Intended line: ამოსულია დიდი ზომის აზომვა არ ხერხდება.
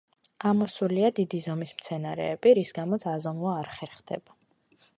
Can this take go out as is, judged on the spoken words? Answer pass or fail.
fail